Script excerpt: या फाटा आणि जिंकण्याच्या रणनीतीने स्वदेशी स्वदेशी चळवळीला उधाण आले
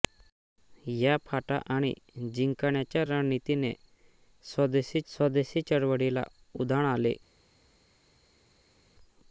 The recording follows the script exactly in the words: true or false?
true